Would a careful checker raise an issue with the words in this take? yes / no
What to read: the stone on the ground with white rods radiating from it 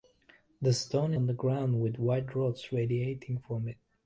no